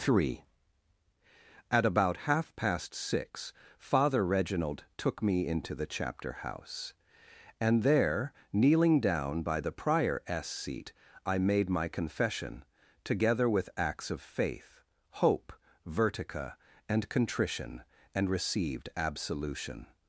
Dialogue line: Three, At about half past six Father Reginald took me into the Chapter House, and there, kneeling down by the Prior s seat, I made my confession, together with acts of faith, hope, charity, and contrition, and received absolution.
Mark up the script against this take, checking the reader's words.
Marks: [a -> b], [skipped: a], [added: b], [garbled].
Three, At about half past six Father Reginald took me into the Chapter House, and there, kneeling down by the Prior s seat, I made my confession, together with acts of faith, hope, [charity, -> vertica] and contrition, and received absolution.